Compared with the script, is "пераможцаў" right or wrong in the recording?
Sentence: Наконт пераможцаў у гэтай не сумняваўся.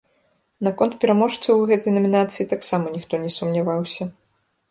right